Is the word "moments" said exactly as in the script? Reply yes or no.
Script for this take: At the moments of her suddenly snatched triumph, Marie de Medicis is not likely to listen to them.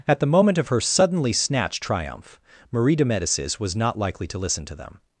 no